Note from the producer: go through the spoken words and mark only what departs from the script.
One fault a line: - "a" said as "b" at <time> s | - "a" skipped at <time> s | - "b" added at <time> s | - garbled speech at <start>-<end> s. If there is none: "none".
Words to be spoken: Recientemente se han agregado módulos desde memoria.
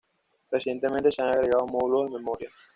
- "desde" said as "de" at 2.1 s